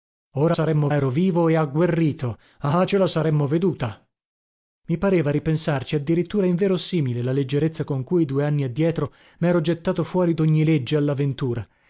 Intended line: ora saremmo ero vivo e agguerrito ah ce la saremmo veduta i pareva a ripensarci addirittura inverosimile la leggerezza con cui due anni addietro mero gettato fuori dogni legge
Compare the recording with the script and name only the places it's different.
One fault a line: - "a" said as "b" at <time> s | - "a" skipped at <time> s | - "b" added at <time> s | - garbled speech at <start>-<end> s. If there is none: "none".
none